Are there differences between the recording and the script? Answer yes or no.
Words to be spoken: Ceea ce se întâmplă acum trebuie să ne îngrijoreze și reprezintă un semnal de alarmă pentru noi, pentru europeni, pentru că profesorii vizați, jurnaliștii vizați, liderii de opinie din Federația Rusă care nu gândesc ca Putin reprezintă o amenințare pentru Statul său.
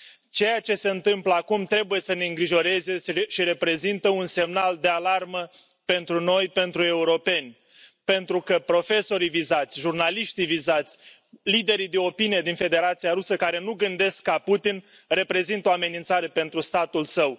no